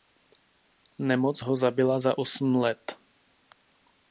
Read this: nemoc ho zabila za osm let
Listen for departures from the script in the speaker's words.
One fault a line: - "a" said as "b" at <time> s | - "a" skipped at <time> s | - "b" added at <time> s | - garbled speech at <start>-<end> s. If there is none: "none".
none